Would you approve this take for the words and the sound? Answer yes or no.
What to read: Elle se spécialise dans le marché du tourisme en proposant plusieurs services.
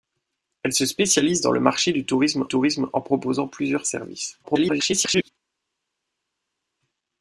no